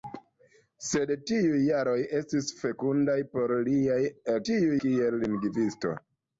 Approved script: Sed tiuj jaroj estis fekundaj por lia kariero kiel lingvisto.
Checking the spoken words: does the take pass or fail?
fail